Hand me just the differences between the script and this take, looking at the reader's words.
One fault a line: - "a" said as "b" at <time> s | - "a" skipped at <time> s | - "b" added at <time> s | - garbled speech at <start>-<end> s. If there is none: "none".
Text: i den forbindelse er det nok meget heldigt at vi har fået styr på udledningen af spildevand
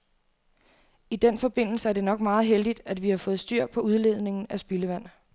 none